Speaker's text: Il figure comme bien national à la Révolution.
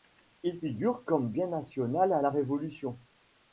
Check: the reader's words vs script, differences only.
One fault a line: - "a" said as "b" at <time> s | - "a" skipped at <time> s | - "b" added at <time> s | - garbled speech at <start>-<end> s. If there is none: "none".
none